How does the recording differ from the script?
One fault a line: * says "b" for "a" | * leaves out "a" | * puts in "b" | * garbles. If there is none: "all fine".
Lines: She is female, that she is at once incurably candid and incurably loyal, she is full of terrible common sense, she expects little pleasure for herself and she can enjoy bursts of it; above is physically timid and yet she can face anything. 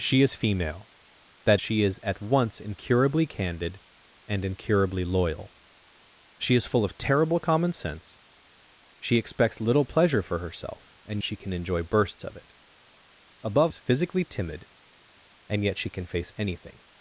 all fine